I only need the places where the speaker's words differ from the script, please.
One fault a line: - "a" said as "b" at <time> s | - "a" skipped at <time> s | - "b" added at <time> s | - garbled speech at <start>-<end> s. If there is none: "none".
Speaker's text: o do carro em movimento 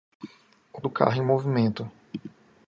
none